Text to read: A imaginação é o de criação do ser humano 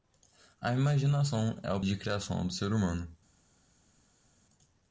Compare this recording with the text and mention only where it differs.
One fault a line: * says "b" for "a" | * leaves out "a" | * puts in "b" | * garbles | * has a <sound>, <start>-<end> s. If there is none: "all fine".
all fine